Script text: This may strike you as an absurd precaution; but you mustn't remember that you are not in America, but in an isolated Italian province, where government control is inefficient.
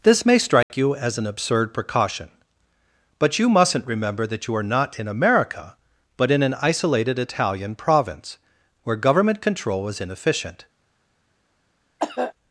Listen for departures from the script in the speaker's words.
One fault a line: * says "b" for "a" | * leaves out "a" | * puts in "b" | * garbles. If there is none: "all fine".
all fine